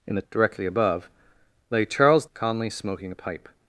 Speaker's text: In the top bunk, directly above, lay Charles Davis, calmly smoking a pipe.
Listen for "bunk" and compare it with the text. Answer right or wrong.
wrong